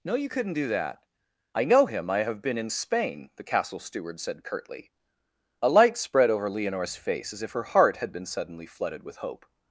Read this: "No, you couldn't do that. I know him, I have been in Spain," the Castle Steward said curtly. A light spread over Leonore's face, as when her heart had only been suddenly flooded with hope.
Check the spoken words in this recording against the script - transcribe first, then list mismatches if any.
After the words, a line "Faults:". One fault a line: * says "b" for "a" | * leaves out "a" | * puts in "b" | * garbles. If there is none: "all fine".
"No, you couldn't do that. I know him, I have been in Spain," the Castle Steward said curtly. A light spread over Leonore's face, as if her heart had been suddenly flooded with hope.
Faults:
* says "if" for "when"
* leaves out "only"